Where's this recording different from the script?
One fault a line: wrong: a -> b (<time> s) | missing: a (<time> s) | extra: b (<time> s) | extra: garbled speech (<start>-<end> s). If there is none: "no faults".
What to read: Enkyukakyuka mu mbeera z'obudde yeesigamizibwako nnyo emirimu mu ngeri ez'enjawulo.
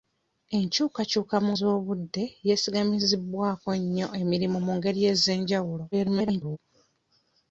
missing: mbeera (1.5 s)
extra: garbled speech (5.9-6.6 s)